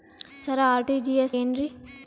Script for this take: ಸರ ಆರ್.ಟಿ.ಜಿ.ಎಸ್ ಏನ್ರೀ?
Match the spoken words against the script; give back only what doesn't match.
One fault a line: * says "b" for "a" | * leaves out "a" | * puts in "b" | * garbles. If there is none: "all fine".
all fine